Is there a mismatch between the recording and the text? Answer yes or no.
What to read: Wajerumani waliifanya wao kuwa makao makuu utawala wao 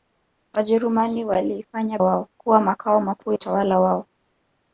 no